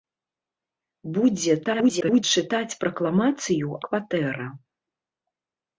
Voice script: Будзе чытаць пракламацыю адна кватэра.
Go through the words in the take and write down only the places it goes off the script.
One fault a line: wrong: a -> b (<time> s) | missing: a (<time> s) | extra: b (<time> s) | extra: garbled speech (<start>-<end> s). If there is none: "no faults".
extra: garbled speech (1.6-2.2 s)
missing: адна (3.8 s)